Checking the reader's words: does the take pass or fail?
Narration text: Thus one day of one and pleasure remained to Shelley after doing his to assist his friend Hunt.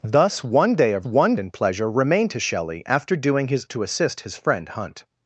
pass